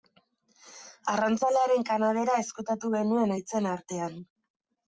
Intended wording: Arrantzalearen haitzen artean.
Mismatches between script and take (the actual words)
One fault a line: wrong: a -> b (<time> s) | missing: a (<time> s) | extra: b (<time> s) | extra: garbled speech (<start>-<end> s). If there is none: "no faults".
extra: kanabera ezkutatu genuen (1.9 s)